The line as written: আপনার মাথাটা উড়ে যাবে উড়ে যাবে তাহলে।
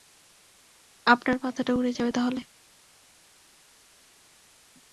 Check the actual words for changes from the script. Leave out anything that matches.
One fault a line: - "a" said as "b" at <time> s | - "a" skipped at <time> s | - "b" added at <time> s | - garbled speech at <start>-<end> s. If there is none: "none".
- "উড়ে যাবে" skipped at 2.1 s